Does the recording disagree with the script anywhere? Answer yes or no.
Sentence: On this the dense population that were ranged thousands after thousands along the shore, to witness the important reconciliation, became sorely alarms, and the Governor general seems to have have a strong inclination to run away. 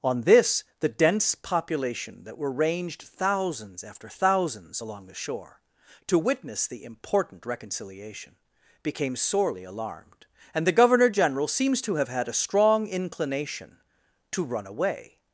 yes